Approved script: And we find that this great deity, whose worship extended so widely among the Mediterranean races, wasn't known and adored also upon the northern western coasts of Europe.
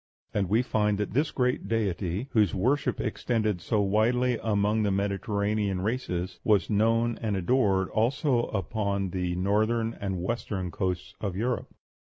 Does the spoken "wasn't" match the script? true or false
false